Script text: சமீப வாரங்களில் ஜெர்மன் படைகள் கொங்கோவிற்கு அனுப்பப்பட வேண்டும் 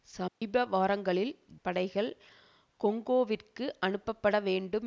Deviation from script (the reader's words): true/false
true